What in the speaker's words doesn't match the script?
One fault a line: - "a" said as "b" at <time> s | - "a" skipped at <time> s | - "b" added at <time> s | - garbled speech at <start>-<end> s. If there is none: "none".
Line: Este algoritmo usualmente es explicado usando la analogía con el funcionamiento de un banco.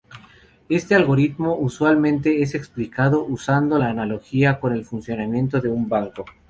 none